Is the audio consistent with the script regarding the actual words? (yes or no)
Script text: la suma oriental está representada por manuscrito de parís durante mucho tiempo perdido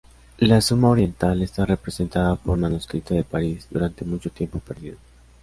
yes